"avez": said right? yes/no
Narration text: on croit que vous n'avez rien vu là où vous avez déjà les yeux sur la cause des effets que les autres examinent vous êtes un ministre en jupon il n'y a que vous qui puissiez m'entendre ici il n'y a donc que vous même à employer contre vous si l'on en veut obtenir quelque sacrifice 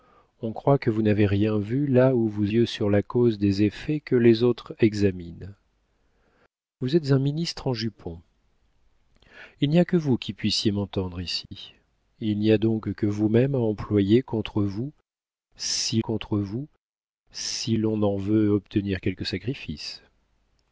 no